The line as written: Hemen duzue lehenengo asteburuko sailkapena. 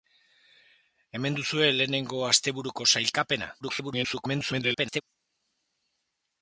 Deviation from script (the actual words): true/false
true